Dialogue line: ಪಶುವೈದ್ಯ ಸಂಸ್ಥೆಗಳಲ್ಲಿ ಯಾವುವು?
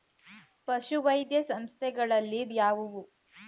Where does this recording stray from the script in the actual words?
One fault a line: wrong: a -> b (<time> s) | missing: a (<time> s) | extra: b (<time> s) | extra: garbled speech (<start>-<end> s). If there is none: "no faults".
no faults